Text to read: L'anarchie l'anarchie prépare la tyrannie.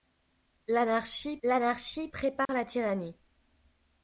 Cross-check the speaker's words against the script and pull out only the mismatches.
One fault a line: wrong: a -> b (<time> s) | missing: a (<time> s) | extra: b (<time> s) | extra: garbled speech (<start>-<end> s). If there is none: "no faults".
no faults